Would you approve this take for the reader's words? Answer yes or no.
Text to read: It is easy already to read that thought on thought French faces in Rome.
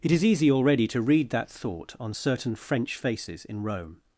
no